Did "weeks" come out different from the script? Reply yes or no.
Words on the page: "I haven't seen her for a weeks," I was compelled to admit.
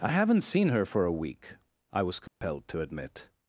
yes